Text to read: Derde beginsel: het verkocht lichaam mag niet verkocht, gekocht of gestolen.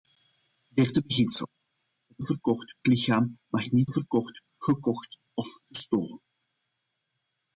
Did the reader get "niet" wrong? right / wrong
right